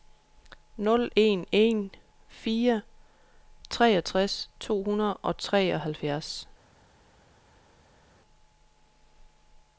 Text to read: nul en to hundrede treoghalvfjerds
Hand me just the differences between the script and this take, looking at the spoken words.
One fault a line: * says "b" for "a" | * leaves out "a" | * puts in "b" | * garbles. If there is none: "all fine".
* puts in "en fire treogtres"
* puts in "og"